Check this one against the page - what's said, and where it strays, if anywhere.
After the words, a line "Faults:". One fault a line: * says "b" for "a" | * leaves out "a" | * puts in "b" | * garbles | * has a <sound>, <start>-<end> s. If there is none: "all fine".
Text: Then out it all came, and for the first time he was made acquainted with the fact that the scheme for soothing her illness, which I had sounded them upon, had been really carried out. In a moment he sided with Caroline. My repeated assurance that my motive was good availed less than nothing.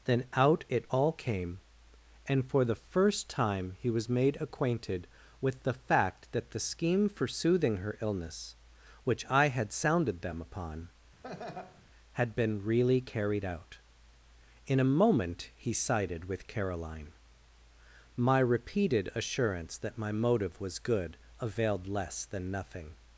Then out it all came, and for the first time he was made acquainted with the fact that the scheme for soothing her illness, which I had sounded them upon, had been really carried out. In a moment he sided with Caroline. My repeated assurance that my motive was good availed less than nothing.
Faults:
* has a laugh, 11.2-11.8 s